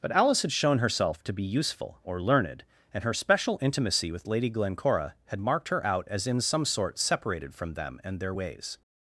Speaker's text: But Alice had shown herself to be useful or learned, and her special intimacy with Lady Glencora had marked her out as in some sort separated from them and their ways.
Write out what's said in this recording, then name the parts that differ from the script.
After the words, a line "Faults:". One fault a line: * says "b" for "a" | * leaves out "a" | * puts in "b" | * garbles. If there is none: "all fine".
But Alice had shown herself to be useful or learned, and her special intimacy with Lady Glencora had marked her out as in some sort separated from them and their ways.
Faults:
all fine